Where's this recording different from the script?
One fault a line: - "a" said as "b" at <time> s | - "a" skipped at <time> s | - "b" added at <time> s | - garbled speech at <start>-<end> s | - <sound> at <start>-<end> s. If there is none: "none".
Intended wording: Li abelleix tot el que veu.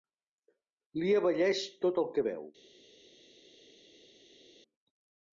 none